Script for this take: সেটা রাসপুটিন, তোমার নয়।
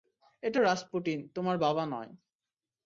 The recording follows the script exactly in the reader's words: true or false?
false